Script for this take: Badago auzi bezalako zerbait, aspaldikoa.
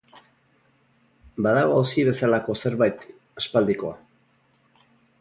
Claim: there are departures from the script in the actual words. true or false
false